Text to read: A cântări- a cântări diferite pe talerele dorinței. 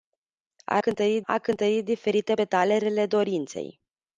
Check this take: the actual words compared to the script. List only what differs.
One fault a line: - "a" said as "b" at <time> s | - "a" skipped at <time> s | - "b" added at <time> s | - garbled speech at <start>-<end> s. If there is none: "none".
none